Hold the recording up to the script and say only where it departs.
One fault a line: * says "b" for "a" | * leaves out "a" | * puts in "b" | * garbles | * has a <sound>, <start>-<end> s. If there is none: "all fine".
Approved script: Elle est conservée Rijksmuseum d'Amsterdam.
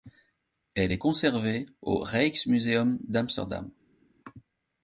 * puts in "au"